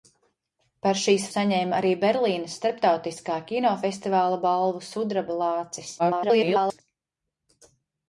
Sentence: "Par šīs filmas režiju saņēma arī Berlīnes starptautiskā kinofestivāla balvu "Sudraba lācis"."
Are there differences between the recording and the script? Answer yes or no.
yes